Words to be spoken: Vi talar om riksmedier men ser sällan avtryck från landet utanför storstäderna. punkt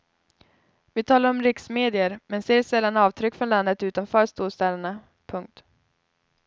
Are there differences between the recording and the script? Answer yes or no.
no